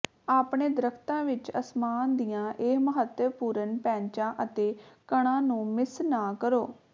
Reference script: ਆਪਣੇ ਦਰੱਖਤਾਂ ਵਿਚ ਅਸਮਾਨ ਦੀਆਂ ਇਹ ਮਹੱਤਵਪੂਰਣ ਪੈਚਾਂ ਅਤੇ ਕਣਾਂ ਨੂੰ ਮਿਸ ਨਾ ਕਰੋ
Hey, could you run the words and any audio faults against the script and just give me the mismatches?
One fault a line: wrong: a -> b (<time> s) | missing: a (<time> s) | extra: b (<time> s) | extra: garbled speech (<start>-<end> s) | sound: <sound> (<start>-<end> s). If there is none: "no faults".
no faults